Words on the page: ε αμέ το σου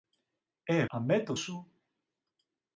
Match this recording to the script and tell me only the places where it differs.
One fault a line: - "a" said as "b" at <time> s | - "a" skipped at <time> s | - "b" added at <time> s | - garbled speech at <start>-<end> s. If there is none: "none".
none